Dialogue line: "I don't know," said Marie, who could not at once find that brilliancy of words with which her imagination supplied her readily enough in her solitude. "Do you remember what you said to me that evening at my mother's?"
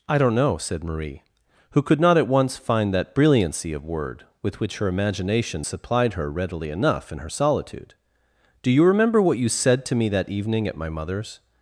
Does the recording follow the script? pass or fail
fail